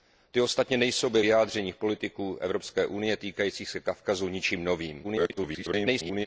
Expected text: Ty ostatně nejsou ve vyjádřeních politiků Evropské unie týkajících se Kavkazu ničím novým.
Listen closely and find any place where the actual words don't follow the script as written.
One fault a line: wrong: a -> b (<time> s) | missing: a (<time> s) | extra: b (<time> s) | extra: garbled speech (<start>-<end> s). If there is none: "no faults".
extra: garbled speech (5.0-6.3 s)